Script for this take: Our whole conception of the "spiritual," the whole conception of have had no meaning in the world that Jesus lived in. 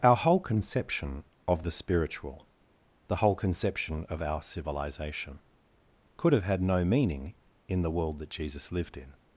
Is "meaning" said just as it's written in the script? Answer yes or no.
yes